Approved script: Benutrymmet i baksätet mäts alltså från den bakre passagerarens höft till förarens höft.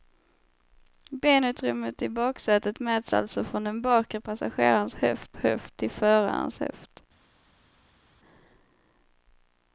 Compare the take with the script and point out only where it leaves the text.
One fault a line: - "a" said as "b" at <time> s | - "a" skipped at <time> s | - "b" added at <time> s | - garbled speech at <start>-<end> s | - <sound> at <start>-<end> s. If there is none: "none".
- "höft" added at 5.4 s